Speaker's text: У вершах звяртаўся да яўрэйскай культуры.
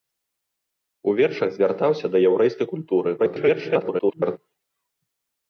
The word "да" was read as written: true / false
true